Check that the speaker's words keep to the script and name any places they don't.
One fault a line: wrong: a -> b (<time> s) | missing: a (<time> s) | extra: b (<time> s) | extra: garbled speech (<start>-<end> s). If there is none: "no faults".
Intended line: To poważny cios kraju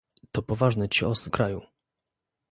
no faults